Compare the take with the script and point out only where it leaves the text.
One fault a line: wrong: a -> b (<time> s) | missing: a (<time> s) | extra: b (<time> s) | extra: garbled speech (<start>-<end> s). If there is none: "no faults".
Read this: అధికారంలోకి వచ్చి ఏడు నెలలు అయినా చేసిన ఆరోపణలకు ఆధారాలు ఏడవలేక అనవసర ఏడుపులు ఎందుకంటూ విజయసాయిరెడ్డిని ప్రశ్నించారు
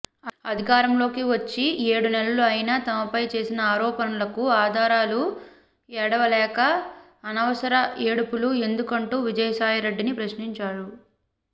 extra: తమపై (2.9 s)